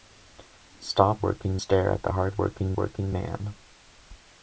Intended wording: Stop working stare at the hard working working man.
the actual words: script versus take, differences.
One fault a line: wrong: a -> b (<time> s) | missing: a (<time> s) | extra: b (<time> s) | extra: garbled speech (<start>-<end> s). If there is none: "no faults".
no faults